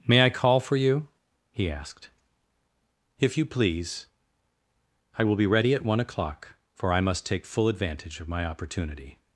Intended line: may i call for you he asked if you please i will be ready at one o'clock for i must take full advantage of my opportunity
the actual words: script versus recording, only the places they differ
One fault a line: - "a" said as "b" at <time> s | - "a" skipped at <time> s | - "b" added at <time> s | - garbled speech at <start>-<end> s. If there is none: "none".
none